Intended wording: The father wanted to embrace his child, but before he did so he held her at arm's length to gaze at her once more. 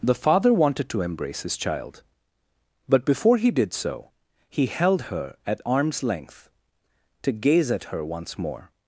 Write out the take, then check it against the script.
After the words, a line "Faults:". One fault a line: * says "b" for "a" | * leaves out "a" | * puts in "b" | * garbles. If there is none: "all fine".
The father wanted to embrace his child, but before he did so he held her at arm's length to gaze at her once more.
Faults:
all fine